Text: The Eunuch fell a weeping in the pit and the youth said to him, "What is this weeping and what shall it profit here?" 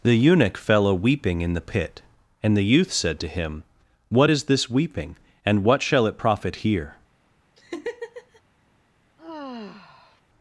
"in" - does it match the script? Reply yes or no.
yes